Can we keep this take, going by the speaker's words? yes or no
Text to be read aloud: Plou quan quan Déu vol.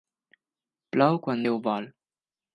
no